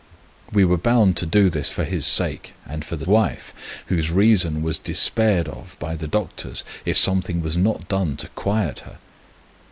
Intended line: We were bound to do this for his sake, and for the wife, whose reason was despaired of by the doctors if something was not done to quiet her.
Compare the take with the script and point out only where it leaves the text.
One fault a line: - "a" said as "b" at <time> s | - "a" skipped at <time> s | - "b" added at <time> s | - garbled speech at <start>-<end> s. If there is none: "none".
none